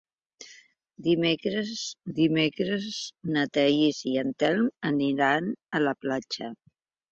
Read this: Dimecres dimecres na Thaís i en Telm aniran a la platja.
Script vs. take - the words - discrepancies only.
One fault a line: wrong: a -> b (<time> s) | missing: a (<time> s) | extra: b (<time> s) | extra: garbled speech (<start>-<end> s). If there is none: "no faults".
no faults